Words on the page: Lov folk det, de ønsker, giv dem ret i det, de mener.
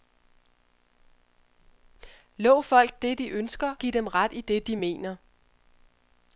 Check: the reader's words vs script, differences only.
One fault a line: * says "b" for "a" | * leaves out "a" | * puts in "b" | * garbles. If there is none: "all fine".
all fine